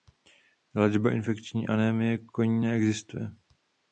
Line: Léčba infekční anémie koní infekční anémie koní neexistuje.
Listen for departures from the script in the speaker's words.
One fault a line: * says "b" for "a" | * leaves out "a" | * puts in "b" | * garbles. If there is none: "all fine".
* leaves out "infekční anémie koní"